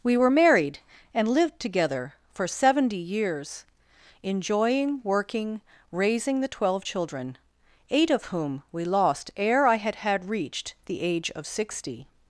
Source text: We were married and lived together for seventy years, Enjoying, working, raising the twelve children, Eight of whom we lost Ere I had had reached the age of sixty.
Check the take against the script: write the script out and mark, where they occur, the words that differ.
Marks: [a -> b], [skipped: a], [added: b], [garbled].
We were married and lived together for seventy years, Enjoying, working, raising the twelve children, Eight of whom we lost Ere I had had reached the age of sixty.